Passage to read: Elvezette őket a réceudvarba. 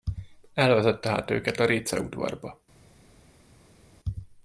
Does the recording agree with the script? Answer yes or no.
no